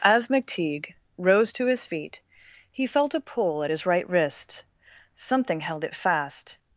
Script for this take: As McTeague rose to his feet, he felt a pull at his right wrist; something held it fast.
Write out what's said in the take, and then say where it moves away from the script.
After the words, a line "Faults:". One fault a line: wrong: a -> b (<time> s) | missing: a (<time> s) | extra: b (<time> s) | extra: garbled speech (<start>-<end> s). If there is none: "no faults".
As McTeague rose to his feet, he felt a pull at his right wrist; something held it fast.
Faults:
no faults